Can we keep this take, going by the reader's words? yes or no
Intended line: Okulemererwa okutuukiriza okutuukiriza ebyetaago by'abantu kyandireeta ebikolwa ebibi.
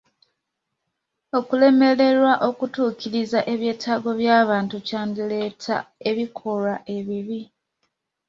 no